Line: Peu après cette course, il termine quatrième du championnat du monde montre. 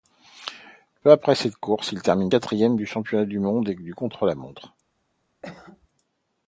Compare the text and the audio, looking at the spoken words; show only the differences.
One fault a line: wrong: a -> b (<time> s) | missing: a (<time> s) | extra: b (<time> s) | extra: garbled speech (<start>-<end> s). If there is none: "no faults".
extra: du contre la (3.7 s)